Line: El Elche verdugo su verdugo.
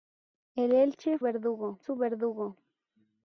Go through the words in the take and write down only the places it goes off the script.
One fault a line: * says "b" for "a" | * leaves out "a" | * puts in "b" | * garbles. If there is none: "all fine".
all fine